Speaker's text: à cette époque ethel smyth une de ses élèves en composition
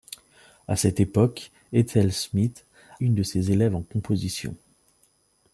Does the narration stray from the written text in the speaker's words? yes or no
no